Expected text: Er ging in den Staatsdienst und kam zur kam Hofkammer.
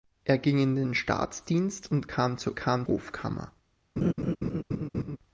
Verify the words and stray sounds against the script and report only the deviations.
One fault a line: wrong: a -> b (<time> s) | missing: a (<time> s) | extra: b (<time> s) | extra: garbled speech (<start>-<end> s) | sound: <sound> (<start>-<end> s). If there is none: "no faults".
sound: laugh (4.0-5.2 s)